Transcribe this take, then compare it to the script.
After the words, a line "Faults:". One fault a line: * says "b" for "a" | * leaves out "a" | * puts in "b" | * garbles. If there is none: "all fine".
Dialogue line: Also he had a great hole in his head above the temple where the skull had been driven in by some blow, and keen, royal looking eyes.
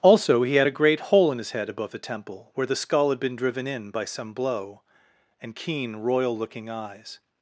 Also he had a great hole in his head above the temple where the skull had been driven in by some blow, and keen, royal looking eyes.
Faults:
all fine